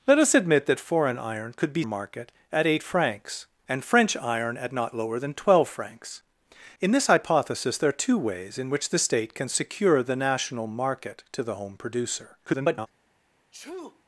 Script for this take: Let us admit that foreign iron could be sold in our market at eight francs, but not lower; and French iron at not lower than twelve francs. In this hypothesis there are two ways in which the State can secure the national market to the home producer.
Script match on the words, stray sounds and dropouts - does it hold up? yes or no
no